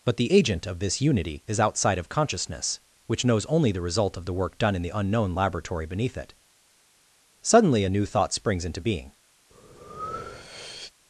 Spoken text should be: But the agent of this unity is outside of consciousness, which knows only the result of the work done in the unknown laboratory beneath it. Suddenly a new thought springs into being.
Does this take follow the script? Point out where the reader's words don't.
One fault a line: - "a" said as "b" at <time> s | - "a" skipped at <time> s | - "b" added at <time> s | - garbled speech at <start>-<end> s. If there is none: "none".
none